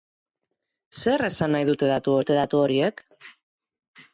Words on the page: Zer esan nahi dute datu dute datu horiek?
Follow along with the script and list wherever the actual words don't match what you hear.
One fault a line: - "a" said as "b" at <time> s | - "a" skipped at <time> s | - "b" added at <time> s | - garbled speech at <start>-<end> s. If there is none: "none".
none